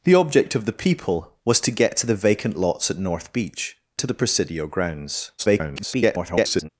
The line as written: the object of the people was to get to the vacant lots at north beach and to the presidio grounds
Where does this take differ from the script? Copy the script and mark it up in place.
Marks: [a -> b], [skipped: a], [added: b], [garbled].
the object of the people was to get to the vacant lots at north beach [skipped: and] to the presidio grounds [garbled]